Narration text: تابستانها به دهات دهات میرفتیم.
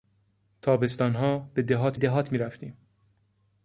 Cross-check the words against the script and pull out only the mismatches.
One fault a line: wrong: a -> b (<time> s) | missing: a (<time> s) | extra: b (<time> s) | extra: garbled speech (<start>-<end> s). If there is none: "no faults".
no faults